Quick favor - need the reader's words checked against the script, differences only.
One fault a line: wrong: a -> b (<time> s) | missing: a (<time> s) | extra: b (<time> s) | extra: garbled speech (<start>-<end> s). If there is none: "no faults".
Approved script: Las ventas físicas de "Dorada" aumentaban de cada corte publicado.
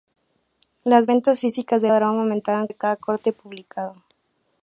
no faults